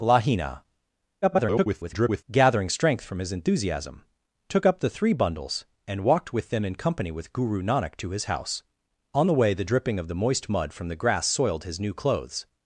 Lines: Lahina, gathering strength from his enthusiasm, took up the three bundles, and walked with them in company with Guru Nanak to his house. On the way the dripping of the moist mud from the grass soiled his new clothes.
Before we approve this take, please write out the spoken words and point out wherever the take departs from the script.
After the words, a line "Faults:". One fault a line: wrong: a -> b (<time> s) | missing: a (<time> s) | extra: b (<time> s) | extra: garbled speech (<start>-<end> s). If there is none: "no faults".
Lahina, [garbled] gathering strength from his enthusiasm, took up the three bundles, and walked with them in company with Guru Nanak to his house. On the way the dripping of the moist mud from the grass soiled his new clothes.
Faults:
extra: garbled speech (1.2-2.2 s)